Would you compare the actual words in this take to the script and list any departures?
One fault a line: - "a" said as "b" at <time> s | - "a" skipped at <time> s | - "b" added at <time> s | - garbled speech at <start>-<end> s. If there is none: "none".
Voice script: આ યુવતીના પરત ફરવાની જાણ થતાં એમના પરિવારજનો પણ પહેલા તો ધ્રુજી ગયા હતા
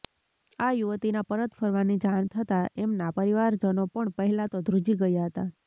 none